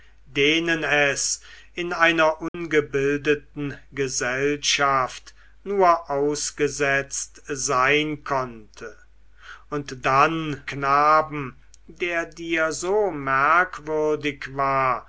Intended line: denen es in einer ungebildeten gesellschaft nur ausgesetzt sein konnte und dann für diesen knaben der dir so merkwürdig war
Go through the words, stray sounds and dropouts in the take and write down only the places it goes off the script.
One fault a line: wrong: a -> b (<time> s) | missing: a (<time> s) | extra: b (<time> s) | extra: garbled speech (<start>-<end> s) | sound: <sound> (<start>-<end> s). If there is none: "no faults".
sound: dropout (2.5-2.5 s)
missing: für diesen (10.6 s)